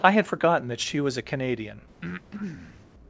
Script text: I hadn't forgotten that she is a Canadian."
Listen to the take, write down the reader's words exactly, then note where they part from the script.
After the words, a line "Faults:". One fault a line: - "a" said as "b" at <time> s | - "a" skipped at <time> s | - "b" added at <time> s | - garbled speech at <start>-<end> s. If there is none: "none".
I had forgotten that she was a Canadian."
Faults:
- "hadn't" said as "had" at 0.1 s
- "is" said as "was" at 1.0 s